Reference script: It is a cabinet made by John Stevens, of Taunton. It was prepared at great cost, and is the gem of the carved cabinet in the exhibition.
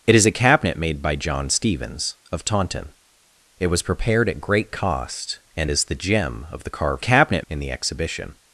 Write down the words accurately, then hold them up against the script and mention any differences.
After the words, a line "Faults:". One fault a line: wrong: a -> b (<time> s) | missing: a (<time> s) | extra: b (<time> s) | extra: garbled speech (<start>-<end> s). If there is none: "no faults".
It is a cabinet made by John Stevens, of Taunton. It was prepared at great cost, and is the gem of the carved cabinet in the exhibition.
Faults:
no faults